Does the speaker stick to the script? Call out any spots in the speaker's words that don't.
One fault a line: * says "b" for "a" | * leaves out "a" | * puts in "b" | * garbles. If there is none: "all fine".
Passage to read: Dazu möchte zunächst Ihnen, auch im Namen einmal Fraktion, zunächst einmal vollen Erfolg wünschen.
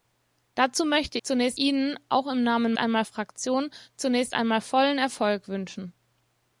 all fine